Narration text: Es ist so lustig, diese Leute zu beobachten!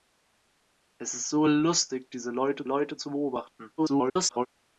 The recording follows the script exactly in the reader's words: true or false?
false